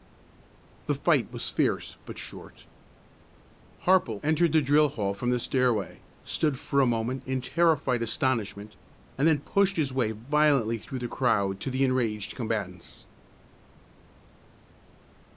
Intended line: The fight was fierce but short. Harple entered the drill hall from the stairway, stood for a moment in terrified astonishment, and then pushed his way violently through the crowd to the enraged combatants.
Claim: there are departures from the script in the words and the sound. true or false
false